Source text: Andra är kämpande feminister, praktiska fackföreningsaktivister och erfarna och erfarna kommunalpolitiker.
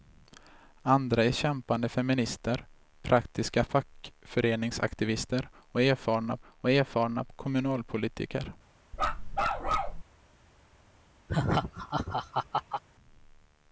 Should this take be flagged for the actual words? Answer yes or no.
no